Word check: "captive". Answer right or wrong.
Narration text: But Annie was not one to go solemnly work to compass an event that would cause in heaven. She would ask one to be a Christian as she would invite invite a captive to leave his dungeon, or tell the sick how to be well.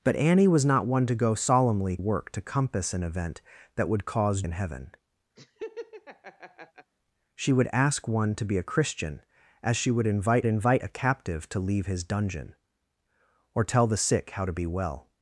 right